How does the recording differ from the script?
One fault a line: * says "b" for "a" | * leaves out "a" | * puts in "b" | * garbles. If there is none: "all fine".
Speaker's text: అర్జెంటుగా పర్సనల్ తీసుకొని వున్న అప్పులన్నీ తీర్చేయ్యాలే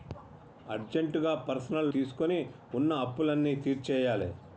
all fine